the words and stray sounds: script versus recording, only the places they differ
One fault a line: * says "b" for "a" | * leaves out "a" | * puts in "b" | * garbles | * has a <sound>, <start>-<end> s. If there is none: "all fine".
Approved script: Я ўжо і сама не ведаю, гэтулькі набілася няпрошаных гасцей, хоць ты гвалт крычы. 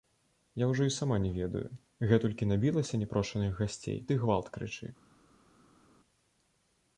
* leaves out "хоць"